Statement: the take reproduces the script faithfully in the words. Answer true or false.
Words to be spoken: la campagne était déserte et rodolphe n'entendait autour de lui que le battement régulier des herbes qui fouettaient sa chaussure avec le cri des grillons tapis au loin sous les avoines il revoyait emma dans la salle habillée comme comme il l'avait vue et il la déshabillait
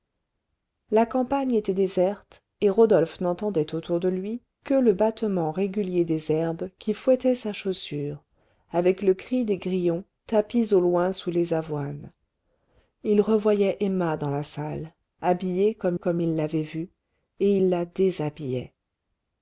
true